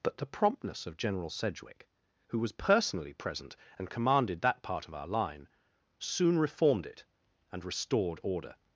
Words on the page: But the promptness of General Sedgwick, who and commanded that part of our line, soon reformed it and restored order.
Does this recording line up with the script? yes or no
no